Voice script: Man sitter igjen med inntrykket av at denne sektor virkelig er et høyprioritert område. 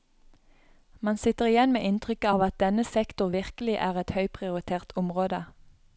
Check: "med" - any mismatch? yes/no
no